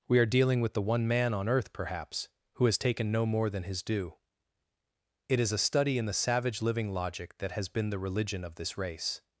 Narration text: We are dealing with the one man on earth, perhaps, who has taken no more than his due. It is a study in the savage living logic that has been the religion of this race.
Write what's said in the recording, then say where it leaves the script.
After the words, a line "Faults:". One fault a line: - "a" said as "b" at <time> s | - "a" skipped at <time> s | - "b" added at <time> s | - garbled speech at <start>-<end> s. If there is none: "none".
We are dealing with the one man on earth, perhaps, who has taken no more than his due. It is a study in the savage living logic that has been the religion of this race.
Faults:
none